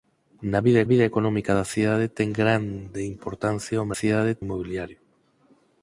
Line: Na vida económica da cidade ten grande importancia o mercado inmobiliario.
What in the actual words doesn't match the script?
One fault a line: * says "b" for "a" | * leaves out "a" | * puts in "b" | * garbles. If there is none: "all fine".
* puts in "vida"
* says "cidade" for "mercado"